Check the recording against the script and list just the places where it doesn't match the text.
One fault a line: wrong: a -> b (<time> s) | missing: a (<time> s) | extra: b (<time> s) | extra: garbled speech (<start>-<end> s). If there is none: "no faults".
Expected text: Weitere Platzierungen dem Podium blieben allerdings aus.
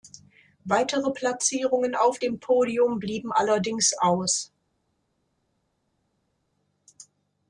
extra: auf (1.9 s)